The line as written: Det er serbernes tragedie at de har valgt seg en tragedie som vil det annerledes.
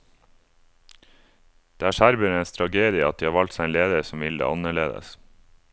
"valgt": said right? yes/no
yes